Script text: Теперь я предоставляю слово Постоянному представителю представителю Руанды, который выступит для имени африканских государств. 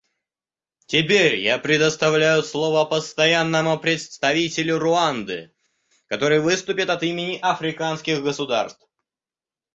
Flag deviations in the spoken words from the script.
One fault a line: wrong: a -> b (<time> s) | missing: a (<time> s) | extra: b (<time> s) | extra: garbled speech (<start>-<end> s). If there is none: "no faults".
missing: представителю (4.8 s)
wrong: для -> от (6.9 s)